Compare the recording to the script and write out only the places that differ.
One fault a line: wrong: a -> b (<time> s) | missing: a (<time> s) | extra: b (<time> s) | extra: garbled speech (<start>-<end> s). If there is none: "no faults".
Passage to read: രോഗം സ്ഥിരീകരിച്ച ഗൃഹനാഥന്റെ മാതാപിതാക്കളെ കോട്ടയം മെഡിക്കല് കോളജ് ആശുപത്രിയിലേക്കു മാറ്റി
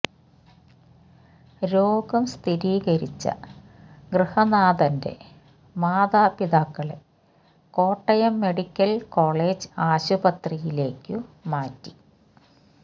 no faults